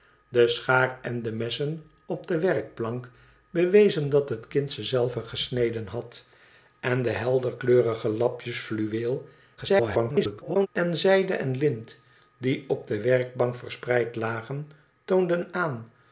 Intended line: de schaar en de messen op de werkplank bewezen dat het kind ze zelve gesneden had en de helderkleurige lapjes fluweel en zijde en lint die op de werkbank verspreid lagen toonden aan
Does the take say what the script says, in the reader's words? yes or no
no